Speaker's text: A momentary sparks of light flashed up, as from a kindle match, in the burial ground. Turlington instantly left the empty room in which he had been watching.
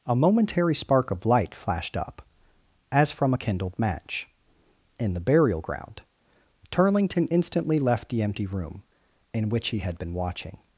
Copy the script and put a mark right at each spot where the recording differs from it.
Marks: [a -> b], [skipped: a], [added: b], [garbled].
A momentary [sparks -> spark] of light flashed up, as from a [kindle -> kindled] match, in the burial ground. Turlington instantly left the empty room in which he had been watching.